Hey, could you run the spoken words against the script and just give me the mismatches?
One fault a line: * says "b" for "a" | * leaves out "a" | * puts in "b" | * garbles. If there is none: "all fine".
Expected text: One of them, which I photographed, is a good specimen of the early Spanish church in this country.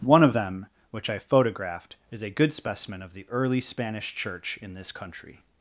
all fine